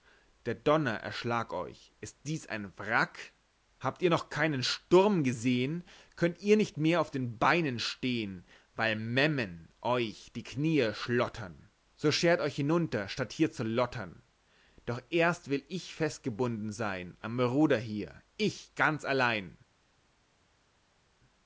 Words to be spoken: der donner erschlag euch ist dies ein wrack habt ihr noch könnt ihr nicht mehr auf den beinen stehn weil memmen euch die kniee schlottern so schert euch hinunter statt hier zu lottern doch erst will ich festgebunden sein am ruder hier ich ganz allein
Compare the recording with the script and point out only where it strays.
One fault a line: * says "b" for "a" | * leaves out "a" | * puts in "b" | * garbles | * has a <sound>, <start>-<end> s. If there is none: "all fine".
* puts in "keinen sturm gesehn"